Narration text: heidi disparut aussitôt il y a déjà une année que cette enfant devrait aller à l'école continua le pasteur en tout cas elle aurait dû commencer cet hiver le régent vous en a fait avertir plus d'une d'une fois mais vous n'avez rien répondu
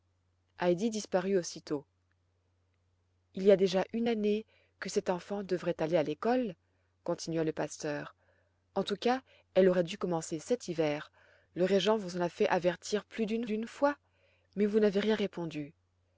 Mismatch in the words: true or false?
false